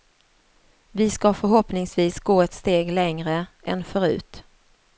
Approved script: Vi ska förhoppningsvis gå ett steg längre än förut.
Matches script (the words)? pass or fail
pass